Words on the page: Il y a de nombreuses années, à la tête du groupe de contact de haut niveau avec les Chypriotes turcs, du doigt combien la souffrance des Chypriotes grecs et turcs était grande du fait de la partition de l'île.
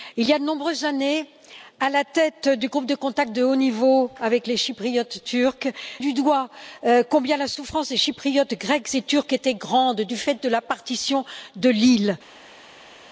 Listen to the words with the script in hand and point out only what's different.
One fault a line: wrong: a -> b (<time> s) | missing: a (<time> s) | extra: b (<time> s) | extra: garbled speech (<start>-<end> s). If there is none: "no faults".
no faults